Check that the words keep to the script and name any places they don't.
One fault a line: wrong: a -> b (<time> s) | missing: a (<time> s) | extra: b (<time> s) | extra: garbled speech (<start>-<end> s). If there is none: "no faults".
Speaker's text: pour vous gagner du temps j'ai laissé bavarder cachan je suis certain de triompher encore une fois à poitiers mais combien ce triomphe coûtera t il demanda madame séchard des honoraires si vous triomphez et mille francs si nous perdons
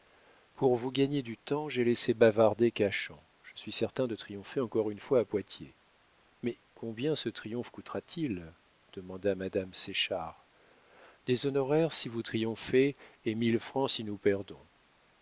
no faults